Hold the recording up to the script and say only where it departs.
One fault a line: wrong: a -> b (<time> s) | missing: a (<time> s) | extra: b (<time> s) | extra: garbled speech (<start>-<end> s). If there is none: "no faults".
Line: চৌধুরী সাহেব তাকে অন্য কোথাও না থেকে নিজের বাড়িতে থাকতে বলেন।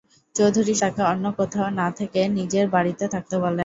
missing: সাহেব (0.7 s)